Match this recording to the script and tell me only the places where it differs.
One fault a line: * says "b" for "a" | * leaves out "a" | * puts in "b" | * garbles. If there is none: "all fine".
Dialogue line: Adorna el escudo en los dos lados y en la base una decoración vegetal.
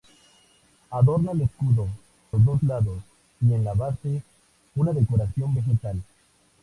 * leaves out "en"